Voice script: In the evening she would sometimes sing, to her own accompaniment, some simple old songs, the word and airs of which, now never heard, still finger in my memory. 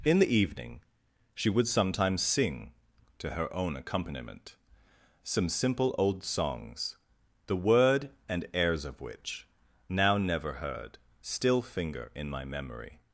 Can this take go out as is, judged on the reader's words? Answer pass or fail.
pass